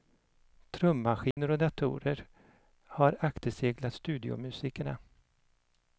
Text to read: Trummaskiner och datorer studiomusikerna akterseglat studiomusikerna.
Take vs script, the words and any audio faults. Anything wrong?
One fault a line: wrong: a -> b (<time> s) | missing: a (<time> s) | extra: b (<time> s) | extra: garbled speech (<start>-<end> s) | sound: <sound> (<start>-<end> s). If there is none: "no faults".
sound: dropout (1.3-1.4 s)
wrong: studiomusikerna -> har (2.8 s)